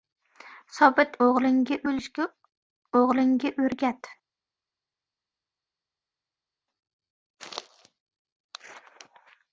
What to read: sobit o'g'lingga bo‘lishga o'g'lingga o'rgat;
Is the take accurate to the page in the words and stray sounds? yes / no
yes